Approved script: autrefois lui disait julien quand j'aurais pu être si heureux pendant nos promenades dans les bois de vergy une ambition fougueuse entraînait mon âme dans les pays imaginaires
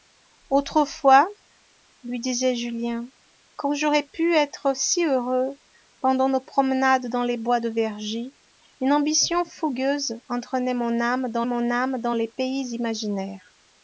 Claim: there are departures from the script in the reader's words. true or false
true